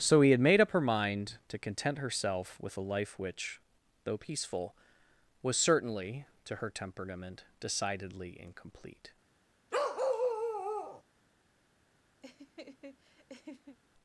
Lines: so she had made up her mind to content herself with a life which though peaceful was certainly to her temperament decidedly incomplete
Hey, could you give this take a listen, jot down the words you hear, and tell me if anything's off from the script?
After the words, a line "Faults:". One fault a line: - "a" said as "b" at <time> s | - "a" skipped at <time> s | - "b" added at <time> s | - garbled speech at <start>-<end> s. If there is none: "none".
so he had made up her mind to content herself with a life which though peaceful was certainly to her temperament decidedly incomplete
Faults:
- "she" said as "he" at 0.2 s